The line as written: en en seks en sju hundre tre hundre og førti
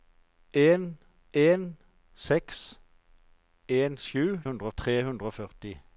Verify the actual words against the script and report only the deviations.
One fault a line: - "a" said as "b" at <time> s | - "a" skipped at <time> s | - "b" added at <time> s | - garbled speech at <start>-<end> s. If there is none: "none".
none